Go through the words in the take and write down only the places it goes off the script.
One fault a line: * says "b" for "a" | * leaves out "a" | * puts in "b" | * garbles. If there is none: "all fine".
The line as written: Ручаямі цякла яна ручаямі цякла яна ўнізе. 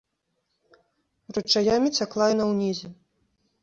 * leaves out "ручаямі цякла яна"